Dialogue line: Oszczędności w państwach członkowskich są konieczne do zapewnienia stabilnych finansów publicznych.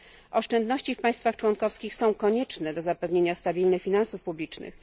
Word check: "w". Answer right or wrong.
right